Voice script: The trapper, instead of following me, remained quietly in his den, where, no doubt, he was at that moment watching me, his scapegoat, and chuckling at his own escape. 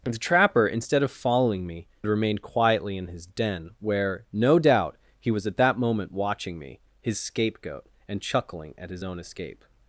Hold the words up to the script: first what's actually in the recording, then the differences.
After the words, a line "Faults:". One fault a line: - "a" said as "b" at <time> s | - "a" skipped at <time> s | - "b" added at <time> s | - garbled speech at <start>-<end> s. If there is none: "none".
The trapper, instead of following me, remained quietly in his den, where, no doubt, he was at that moment watching me, his scapegoat, and chuckling at his own escape.
Faults:
none